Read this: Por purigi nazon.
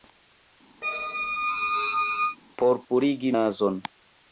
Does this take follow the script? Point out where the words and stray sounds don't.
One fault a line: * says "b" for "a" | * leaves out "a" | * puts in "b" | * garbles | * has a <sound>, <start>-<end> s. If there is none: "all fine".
* has a squeak, 0.8-2.4 s